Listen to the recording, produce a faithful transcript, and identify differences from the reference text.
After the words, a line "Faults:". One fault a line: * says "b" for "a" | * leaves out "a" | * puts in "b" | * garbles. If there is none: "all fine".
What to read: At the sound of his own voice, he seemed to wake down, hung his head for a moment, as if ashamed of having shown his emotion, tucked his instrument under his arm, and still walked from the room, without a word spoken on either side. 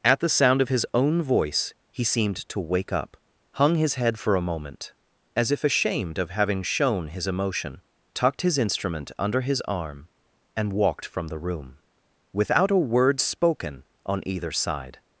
At the sound of his own voice, he seemed to wake up, hung his head for a moment, as if ashamed of having shown his emotion, tucked his instrument under his arm, and walked from the room, without a word spoken on either side.
Faults:
* says "up" for "down"
* leaves out "still"